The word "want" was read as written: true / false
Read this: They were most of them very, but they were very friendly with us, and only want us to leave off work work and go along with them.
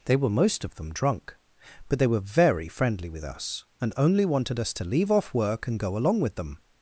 false